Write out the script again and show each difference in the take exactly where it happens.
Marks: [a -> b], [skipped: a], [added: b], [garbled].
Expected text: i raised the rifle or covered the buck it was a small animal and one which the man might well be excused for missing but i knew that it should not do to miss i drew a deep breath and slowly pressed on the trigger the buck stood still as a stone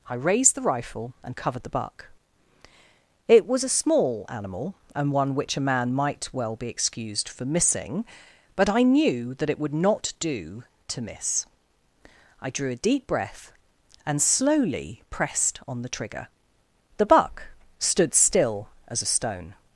i raised the rifle [or -> and] covered the buck it was a small animal and one which [the -> a] man might well be excused for missing but i knew that it [should -> would] not do to miss i drew a deep breath and slowly pressed on the trigger the buck stood still as a stone